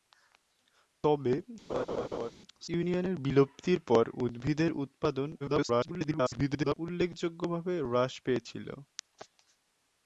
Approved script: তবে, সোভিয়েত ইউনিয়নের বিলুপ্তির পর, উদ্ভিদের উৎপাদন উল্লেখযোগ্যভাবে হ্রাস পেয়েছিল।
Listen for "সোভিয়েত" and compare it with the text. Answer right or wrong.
wrong